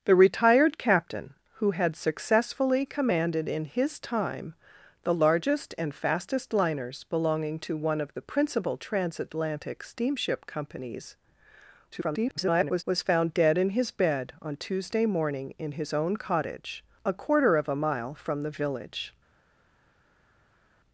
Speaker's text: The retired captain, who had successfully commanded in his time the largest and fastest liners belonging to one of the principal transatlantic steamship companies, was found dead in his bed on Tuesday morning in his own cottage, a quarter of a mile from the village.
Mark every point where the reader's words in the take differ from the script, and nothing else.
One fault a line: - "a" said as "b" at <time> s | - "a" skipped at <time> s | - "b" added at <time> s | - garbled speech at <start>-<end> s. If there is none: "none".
- garbled speech at 11.9-12.8 s